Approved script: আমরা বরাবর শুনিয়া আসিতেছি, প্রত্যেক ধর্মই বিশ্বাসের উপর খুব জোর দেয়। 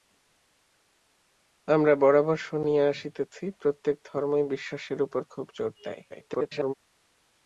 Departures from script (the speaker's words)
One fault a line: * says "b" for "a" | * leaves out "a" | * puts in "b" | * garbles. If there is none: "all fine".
* garbles